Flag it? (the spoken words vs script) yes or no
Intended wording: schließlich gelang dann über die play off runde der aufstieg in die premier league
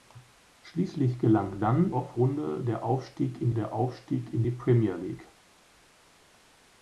yes